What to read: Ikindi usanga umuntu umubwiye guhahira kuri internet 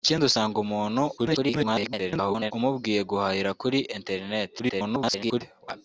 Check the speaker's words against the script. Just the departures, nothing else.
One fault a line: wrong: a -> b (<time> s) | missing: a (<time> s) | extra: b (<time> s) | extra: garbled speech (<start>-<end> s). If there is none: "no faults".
extra: garbled speech (1.2-2.5 s)
extra: garbled speech (4.6-5.4 s)